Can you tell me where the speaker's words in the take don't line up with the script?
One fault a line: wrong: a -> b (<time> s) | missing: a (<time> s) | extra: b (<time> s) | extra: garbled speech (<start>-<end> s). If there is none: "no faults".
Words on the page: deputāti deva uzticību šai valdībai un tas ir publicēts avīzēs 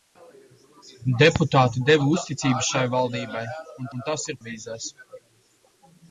extra: un (4.0 s)
missing: publicēts (4.4 s)